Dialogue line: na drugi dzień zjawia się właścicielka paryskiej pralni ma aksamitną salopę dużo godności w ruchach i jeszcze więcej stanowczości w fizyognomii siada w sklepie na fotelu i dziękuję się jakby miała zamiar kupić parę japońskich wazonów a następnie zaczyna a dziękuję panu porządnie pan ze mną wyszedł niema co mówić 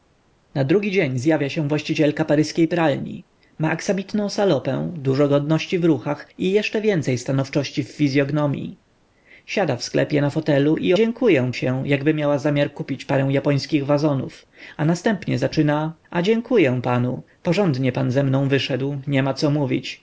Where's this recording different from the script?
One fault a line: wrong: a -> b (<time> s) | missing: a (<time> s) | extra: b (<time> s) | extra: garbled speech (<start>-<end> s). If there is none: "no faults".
no faults